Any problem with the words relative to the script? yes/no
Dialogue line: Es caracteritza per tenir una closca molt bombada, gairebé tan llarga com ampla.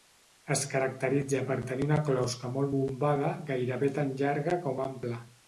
no